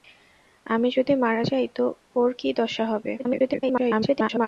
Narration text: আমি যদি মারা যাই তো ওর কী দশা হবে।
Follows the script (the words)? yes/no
no